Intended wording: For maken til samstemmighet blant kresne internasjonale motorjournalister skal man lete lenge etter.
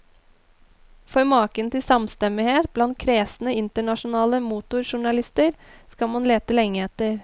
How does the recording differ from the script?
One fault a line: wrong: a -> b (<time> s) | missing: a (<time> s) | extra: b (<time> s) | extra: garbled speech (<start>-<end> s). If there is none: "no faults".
no faults